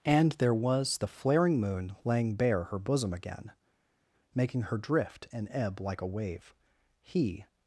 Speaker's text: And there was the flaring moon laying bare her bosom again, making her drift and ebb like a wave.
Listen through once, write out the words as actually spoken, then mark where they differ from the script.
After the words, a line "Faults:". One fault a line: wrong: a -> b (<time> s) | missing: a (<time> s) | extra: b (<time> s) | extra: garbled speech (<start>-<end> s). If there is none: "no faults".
And there was the flaring moon laying bare her bosom again, making her drift and ebb like a wave. He
Faults:
extra: He (7.0 s)